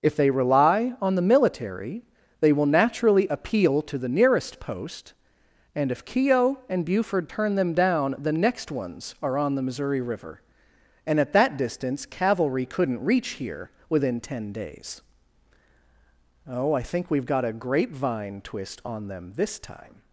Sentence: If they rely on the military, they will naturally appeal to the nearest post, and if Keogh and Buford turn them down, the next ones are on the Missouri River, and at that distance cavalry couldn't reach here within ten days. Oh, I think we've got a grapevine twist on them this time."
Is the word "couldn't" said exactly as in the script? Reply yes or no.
yes